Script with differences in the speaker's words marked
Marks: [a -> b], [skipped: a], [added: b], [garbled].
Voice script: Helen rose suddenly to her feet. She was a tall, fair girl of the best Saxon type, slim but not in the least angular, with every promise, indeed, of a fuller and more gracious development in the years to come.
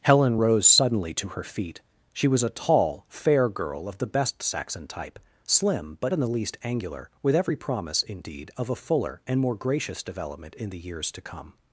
Helen rose suddenly to her feet. She was a tall, fair girl of the best Saxon type, slim but [skipped: not] in the least angular, with every promise, indeed, of a fuller and more gracious development in the years to come.